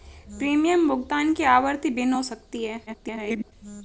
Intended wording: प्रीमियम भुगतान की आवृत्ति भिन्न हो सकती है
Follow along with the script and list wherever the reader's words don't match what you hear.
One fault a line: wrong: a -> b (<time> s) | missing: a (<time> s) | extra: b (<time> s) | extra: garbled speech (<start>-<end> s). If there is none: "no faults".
extra: garbled speech (2.9-3.5 s)